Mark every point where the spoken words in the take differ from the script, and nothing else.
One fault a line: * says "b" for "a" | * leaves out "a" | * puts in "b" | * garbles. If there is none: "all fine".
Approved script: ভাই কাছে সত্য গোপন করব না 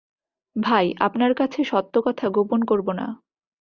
* puts in "আপনার"
* puts in "কথা"